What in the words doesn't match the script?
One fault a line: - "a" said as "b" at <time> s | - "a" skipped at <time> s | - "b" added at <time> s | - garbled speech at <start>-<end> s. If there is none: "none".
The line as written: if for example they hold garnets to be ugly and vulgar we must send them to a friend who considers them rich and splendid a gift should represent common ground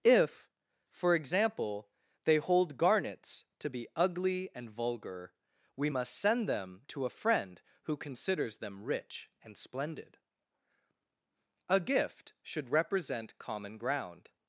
none